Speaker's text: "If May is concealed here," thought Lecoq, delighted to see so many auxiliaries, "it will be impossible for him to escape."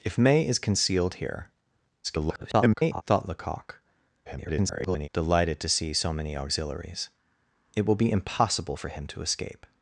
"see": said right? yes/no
yes